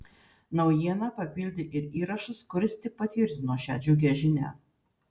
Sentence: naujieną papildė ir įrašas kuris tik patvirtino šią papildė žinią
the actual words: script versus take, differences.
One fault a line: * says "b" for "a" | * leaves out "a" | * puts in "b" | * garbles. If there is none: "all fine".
* says "džiugią" for "papildė"